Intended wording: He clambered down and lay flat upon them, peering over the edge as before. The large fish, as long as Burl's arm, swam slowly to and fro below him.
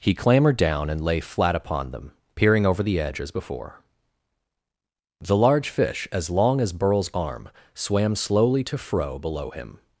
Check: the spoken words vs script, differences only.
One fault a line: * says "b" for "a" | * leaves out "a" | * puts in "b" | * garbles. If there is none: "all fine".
* leaves out "and"